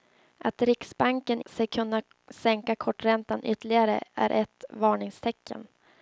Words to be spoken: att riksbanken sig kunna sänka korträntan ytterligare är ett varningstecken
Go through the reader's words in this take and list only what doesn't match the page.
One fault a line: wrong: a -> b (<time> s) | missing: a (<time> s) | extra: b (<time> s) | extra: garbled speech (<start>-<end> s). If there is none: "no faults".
no faults